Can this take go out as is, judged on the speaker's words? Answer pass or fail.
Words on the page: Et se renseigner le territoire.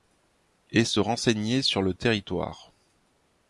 fail